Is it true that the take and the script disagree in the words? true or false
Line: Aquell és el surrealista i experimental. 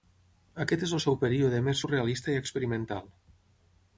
true